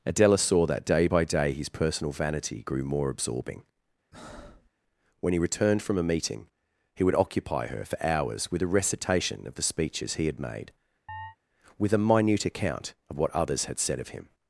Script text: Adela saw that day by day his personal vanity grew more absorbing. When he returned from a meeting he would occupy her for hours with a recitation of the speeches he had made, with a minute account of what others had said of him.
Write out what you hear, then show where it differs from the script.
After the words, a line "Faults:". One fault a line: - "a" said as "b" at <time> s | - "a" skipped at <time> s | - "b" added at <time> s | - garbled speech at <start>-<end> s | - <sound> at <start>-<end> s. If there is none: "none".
Adela saw that day by day his personal vanity grew more absorbing. When he returned from a meeting he would occupy her for hours with a recitation of the speeches he had made, with a minute account of what others had said of him.
Faults:
- breath at 4.1-4.7 s
- chirp at 11.1-11.4 s